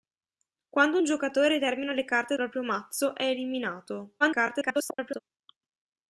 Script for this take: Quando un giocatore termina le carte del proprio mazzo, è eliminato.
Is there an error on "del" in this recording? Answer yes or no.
yes